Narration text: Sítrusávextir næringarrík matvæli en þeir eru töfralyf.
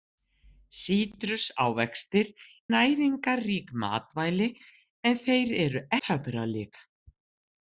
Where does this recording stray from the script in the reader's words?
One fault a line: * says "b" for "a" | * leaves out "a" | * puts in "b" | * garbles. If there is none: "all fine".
all fine